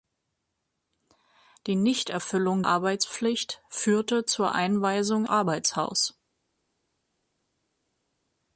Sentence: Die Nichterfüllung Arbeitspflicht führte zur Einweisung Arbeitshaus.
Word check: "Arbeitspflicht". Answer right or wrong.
right